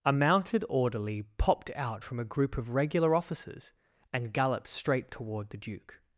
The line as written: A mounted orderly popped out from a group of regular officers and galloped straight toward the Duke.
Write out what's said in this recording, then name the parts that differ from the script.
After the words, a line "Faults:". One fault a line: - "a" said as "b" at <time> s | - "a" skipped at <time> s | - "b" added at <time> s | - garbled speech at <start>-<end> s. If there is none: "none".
A mounted orderly popped out from a group of regular officers and galloped straight toward the Duke.
Faults:
none